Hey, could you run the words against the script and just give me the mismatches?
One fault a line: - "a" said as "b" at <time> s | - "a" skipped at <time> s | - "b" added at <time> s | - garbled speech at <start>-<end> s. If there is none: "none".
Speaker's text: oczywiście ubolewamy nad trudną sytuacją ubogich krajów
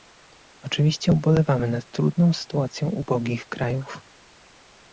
none